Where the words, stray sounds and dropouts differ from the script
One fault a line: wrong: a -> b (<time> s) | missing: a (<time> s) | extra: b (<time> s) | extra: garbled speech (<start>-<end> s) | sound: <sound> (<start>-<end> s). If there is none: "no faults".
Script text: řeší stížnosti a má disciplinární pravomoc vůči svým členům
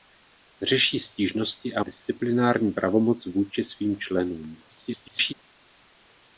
missing: má (1.8 s)
extra: garbled speech (4.7-5.3 s)